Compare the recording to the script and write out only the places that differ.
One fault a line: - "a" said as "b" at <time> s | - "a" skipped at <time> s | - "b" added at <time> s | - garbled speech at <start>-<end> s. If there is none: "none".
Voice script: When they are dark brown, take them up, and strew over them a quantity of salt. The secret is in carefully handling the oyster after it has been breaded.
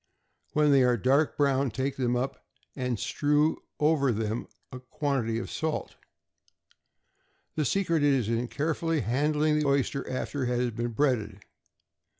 none